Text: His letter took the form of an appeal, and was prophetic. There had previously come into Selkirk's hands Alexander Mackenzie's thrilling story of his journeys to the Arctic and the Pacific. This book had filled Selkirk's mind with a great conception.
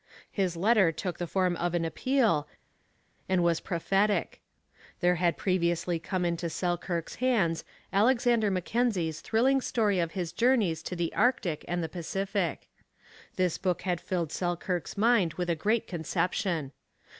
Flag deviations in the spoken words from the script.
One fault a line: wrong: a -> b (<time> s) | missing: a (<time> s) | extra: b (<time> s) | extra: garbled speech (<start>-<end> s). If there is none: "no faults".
no faults